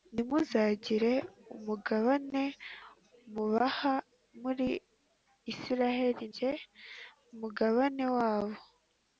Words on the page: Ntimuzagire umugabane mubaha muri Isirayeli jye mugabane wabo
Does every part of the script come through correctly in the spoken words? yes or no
yes